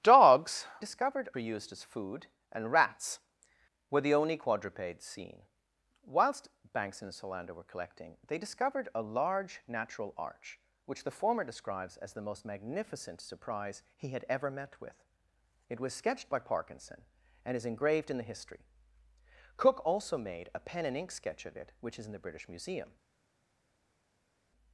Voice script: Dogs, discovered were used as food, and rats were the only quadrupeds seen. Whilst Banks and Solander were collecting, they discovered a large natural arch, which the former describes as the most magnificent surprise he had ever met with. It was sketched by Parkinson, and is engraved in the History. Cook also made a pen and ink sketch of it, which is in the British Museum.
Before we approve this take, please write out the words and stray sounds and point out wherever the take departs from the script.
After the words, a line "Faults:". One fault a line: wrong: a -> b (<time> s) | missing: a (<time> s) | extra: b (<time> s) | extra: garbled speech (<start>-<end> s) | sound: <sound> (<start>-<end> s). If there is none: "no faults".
Dogs, discovered were used as food, and rats were the only quadrupeds seen. Whilst Banks and Solander were collecting, they discovered a large natural arch, which the former describes as the most magnificent surprise he had ever met with. It was sketched by Parkinson, and is engraved in the History. Cook also made a pen and ink sketch of it, which is in the British Museum.
Faults:
no faults